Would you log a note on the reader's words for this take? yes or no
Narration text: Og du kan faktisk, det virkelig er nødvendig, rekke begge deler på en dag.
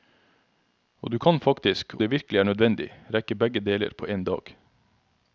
no